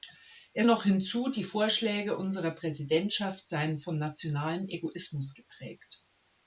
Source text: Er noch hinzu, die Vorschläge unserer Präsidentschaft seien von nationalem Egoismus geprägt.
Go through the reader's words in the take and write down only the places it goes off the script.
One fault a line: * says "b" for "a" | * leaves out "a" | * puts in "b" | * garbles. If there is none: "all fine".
all fine